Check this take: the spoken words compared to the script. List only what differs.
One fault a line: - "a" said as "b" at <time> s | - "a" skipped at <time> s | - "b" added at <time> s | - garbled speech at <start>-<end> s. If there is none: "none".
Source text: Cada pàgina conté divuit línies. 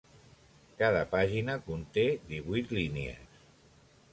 none